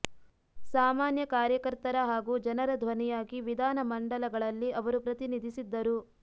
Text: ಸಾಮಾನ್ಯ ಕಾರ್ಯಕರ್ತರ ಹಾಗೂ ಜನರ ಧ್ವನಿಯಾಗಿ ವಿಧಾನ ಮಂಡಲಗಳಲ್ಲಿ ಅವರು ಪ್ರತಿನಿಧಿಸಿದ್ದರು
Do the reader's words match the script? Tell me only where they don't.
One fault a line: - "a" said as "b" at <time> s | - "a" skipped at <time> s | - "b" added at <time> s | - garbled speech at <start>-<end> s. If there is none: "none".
none